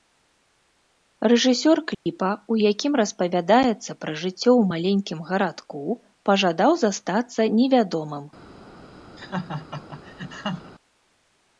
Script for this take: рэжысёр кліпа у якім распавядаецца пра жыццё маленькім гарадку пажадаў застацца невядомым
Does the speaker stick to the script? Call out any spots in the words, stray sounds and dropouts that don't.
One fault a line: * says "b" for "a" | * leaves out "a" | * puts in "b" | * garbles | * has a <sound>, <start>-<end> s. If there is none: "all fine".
* has a dropout, 1.9-2.1 s
* puts in "ў"
* has a laugh, 9.2-10.7 s